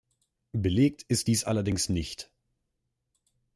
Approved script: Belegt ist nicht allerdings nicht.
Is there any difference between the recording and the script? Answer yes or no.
yes